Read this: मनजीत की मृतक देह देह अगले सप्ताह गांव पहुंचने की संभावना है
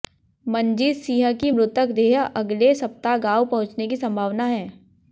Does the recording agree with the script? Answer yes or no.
no